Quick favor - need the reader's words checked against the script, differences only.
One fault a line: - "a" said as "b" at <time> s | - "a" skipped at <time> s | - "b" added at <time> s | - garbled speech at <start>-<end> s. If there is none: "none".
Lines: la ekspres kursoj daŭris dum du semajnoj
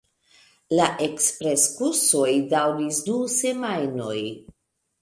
- "dum" skipped at 3.0 s